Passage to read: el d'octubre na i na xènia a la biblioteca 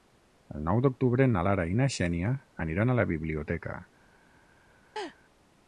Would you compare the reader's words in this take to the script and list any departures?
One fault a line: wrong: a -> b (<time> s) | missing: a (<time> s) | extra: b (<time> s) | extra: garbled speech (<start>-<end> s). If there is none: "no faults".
extra: nou (0.7 s)
extra: lara (1.5 s)
extra: aniran (2.7 s)